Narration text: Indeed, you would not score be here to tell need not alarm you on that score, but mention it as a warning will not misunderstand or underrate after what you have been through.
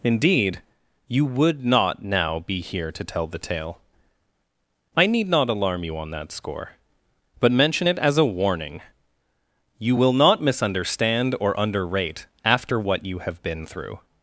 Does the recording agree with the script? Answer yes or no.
no